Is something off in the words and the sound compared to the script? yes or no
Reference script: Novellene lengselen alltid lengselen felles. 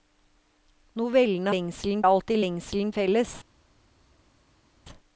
no